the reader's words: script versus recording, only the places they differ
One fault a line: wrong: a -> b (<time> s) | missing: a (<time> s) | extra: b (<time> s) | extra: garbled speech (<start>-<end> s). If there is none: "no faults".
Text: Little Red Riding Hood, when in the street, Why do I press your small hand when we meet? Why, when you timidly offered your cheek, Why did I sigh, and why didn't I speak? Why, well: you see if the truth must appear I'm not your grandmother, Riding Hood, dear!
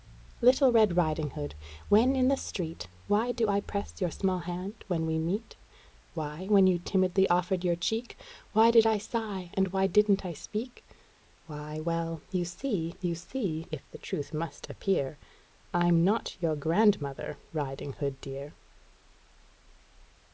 extra: you see (13.0 s)